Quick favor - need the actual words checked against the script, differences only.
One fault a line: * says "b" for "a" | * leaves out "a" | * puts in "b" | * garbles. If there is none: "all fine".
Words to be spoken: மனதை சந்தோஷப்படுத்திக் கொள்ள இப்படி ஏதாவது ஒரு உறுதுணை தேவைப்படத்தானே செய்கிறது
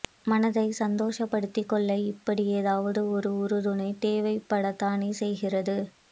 all fine